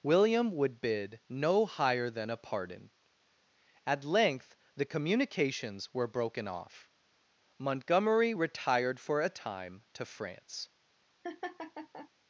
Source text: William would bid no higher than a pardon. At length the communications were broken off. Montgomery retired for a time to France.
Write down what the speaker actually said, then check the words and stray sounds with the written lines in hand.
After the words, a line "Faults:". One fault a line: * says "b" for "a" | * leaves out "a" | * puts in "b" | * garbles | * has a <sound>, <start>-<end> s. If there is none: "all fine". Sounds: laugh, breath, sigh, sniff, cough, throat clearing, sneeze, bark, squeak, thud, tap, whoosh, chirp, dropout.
William would bid no higher than a pardon. At length the communications were broken off. Montgomery retired for a time to France.
Faults:
* has a laugh, 11.2-12.1 s